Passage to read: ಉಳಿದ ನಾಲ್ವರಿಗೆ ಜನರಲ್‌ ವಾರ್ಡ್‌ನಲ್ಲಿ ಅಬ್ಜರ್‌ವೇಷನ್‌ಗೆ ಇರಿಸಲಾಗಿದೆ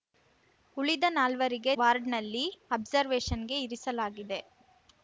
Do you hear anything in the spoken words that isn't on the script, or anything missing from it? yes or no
yes